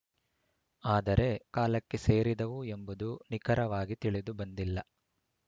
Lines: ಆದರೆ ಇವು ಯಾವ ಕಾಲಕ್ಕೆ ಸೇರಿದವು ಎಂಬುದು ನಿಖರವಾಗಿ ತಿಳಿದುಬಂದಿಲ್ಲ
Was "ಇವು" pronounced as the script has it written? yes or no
no